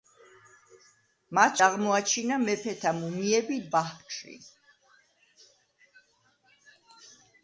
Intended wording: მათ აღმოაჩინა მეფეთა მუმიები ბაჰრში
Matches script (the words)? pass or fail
pass